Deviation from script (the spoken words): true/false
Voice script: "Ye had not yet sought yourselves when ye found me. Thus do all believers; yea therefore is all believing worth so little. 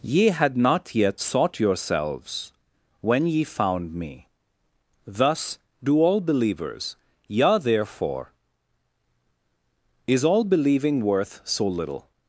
false